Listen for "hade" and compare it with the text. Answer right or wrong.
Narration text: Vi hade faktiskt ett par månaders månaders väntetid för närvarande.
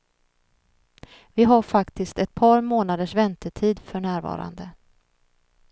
wrong